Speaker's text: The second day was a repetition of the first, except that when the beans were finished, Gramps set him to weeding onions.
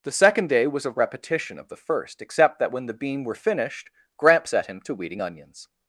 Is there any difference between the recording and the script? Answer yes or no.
yes